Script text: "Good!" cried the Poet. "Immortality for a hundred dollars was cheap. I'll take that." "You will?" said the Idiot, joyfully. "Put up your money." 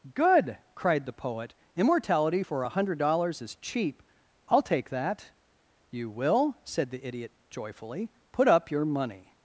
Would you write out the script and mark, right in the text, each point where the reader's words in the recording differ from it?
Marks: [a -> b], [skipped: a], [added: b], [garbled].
"Good!" cried the Poet. "Immortality for a hundred dollars [was -> is] cheap. I'll take that." "You will?" said the Idiot, joyfully. "Put up your money."